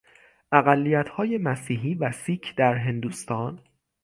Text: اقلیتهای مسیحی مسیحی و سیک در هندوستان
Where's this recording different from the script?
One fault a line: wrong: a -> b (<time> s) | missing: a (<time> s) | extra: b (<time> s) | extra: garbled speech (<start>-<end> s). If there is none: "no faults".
missing: مسیحی (1.9 s)